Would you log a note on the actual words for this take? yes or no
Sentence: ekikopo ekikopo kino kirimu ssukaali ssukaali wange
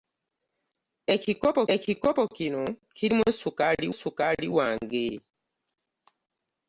no